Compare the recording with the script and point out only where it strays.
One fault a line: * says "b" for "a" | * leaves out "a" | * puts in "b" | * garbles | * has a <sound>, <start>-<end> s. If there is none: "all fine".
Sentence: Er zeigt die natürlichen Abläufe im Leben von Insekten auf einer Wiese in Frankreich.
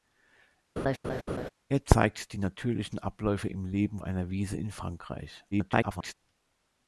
* has a laugh, 0.8-1.5 s
* leaves out "von Insekten auf"
* garbles